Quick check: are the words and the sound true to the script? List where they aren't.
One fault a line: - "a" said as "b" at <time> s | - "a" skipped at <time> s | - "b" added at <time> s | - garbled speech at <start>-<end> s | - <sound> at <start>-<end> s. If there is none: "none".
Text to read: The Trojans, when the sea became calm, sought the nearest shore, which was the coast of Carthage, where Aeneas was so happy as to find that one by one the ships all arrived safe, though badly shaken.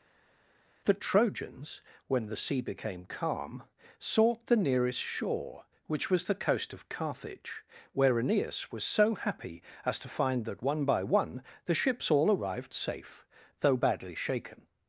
none